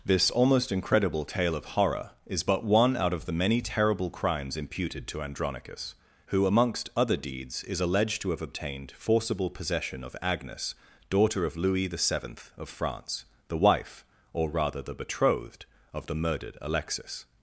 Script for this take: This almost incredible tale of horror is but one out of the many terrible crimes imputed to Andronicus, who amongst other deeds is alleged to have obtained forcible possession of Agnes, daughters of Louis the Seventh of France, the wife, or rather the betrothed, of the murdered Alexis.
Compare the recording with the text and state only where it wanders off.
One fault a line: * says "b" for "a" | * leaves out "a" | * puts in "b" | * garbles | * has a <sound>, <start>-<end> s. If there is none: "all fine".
* says "daughter" for "daughters"